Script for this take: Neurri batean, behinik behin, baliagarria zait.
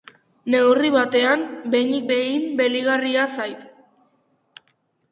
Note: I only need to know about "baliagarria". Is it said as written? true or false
true